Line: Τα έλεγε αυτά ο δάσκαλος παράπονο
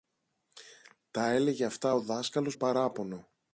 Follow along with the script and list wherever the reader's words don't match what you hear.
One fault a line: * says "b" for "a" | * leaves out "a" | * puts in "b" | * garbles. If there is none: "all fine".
all fine